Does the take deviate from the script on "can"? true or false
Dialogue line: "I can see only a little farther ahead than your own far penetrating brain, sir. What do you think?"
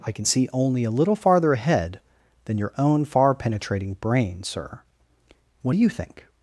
false